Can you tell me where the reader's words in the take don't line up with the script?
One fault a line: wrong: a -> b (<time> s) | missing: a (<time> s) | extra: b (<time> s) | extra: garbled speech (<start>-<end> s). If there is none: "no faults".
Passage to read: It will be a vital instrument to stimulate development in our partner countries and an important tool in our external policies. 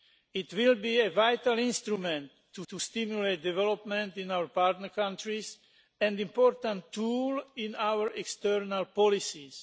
extra: to (2.7 s)